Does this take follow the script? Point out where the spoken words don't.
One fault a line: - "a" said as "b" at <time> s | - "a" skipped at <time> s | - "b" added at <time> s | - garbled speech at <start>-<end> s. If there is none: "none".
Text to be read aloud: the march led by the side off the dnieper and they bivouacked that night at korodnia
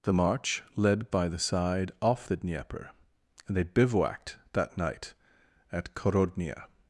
none